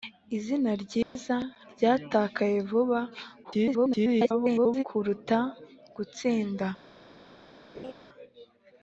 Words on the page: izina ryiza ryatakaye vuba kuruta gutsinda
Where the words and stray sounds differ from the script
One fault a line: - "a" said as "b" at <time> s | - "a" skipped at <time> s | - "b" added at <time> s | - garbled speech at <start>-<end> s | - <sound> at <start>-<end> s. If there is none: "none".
- dropout at 1.0-1.2 s
- garbled speech at 3.4-4.8 s
- laugh at 7.7-7.9 s